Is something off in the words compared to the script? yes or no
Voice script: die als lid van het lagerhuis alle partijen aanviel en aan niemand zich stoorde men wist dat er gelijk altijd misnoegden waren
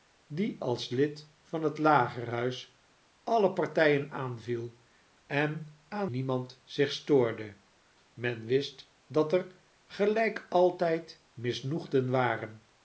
no